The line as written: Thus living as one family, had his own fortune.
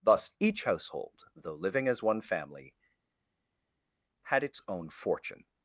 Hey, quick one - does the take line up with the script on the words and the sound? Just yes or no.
no